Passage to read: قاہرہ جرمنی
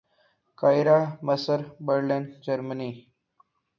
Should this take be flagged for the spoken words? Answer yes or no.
yes